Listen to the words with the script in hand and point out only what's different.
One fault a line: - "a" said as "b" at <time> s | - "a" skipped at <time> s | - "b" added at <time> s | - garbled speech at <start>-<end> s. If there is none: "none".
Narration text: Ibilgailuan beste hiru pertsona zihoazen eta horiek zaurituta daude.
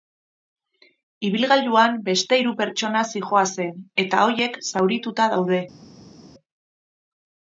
none